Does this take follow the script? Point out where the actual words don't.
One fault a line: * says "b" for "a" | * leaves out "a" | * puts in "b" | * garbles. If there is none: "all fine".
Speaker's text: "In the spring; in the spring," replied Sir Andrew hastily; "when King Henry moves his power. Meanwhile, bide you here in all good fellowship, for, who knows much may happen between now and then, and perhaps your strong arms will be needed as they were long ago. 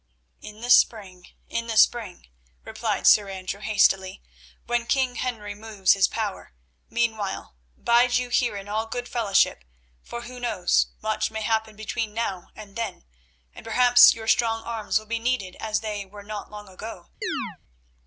* puts in "not"